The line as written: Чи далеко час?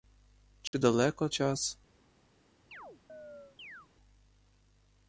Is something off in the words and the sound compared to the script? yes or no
yes